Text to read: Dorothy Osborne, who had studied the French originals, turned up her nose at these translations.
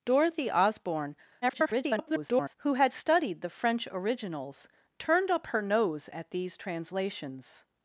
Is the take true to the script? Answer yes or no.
no